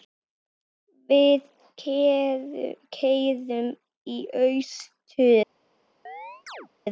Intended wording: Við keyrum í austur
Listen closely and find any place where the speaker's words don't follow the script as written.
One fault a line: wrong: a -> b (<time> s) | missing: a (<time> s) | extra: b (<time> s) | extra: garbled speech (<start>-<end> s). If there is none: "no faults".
no faults